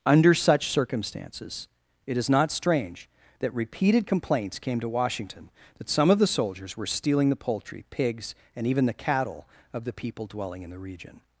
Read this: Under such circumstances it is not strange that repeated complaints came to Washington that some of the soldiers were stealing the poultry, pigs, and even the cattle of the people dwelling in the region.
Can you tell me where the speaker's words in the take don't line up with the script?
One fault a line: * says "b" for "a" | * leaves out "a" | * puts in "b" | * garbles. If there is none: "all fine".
all fine